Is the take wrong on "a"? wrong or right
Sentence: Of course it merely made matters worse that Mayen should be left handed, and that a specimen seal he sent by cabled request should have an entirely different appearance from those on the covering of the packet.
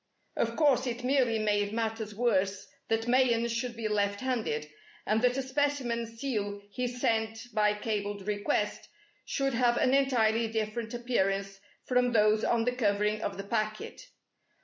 right